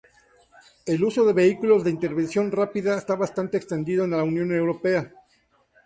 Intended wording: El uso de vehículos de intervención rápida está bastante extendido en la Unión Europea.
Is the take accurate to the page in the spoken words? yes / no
yes